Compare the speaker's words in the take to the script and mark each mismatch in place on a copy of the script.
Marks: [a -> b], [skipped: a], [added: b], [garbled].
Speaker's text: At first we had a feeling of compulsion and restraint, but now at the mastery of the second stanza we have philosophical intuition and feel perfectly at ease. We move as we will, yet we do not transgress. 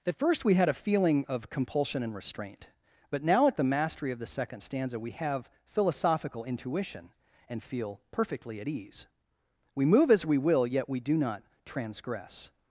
At first we had a feeling of compulsion and restraint, but now at the mastery of the second stanza we have philosophical intuition and feel perfectly at ease. We move as we will, yet we do not transgress.